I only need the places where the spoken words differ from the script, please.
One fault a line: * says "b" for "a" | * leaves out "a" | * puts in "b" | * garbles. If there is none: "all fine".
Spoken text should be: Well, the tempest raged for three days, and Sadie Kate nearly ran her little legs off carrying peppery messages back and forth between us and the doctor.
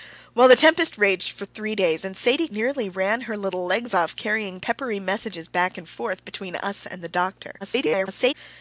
* leaves out "Kate"
* garbles